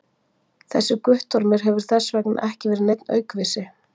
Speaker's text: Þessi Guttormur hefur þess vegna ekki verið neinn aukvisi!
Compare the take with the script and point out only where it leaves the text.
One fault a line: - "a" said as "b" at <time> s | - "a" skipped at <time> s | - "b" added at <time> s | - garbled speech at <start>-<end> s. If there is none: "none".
none